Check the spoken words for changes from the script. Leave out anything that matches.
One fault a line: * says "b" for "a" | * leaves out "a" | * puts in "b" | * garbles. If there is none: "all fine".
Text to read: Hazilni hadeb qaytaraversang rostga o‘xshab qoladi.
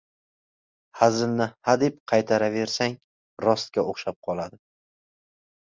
all fine